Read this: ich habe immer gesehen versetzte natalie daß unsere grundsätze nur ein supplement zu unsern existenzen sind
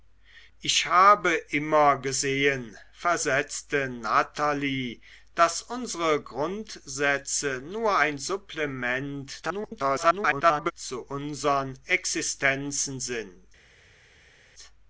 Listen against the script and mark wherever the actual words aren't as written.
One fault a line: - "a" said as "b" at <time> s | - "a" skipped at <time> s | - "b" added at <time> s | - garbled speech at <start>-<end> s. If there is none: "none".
- garbled speech at 9.4-10.7 s